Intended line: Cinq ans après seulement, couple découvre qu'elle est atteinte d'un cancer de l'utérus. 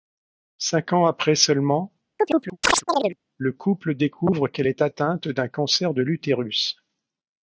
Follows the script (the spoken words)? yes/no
no